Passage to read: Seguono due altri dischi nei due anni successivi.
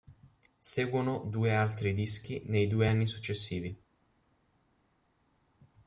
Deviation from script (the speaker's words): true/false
false